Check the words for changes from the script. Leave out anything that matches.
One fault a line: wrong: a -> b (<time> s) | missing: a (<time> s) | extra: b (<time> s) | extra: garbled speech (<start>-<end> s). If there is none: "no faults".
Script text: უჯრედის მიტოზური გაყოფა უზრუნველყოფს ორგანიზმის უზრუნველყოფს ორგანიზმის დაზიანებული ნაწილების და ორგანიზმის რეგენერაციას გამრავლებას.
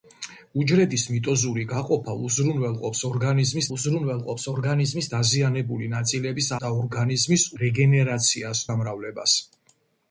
no faults